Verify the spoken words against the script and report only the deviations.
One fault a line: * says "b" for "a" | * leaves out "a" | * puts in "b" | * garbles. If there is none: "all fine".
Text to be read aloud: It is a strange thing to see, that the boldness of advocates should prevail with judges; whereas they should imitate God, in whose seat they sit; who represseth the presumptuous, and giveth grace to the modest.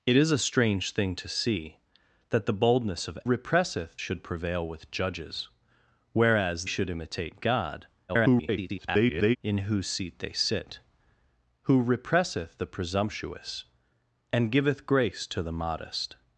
* says "represseth" for "advocates"
* leaves out "they"
* garbles